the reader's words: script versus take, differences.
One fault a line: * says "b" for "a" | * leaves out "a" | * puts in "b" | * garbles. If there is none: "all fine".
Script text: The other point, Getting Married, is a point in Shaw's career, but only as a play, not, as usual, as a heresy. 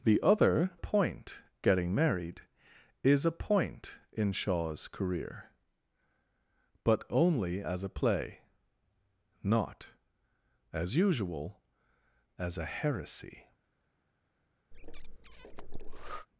all fine